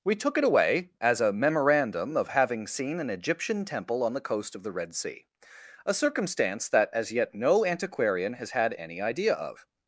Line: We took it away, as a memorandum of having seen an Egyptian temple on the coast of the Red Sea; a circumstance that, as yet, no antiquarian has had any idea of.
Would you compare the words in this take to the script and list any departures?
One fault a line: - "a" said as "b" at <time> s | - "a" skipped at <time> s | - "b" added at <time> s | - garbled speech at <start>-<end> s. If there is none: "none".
none